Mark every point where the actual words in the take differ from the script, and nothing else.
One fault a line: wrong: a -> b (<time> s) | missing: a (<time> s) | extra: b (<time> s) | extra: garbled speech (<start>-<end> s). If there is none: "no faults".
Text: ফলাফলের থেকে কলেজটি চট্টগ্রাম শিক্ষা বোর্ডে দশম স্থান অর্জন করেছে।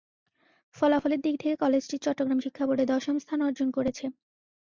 extra: দিক (1.2 s)